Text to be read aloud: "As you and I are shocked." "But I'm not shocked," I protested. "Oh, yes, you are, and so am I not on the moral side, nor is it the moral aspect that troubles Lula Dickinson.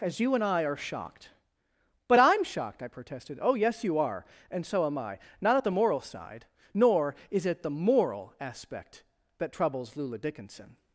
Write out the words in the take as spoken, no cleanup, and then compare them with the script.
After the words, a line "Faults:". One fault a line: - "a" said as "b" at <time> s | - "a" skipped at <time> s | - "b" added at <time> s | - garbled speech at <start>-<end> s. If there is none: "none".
"As you and I are shocked." "But I'm shocked," I protested. "Oh, yes, you are, and so am I not at the moral side, nor is it the moral aspect that troubles Lula Dickinson.
Faults:
- "not" skipped at 2.4 s
- "on" said as "at" at 5.5 s